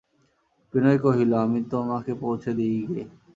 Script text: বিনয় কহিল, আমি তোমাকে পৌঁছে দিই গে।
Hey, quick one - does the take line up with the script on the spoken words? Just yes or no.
yes